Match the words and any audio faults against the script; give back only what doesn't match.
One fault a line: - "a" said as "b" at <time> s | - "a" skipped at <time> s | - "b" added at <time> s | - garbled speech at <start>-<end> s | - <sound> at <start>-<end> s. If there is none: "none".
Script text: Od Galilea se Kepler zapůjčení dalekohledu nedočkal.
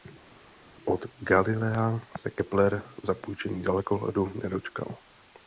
none